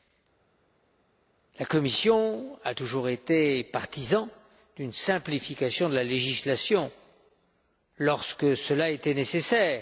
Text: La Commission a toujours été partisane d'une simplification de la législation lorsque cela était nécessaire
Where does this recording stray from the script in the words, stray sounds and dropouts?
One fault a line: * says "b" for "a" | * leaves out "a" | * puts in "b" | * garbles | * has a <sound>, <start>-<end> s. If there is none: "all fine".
all fine